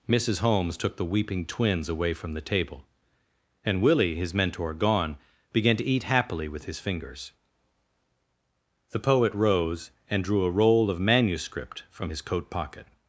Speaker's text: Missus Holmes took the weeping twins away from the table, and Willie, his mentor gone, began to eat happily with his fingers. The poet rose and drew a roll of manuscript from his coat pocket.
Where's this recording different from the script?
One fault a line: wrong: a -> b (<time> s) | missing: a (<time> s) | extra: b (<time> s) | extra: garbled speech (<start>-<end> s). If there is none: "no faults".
no faults